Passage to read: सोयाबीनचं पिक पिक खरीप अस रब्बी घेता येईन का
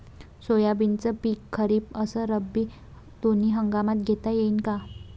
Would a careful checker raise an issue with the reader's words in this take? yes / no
yes